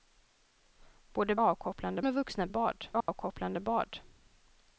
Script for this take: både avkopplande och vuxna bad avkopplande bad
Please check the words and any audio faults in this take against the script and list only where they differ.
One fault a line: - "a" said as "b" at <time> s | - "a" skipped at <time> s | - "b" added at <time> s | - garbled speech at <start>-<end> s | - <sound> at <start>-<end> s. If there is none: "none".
- dropout at 3.0-3.1 s